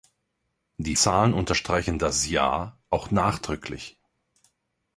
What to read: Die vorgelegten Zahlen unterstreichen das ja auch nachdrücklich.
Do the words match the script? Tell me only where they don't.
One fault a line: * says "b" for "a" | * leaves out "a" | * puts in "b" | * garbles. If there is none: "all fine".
* leaves out "vorgelegten"